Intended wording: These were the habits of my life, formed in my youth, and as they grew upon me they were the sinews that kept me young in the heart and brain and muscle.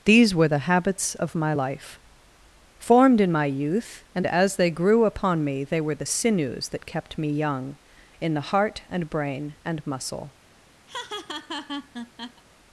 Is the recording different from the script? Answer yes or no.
no